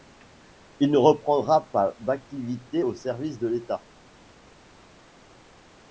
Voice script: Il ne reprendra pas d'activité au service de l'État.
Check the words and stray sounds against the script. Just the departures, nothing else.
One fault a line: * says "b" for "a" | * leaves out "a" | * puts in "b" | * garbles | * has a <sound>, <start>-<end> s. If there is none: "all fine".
all fine